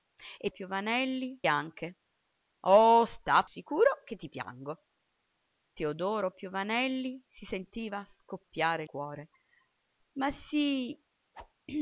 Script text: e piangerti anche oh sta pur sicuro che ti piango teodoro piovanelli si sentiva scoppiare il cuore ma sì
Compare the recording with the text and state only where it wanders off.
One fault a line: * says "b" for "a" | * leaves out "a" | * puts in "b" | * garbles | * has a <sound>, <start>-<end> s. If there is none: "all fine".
* says "piovanelli" for "piangerti"
* leaves out "pur"
* leaves out "il"
* has a whoosh, 11.3-11.5 s